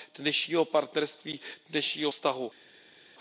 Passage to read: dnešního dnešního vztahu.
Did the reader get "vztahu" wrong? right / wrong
right